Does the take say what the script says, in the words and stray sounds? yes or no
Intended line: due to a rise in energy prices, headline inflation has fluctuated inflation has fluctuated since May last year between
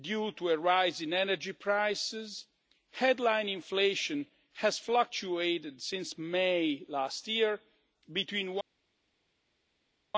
no